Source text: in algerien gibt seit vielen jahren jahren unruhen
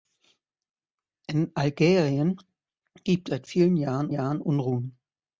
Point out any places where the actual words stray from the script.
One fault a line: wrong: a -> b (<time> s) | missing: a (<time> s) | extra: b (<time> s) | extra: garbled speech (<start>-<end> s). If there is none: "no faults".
no faults